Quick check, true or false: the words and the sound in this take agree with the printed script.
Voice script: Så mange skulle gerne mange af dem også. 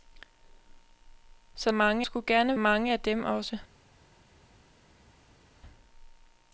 true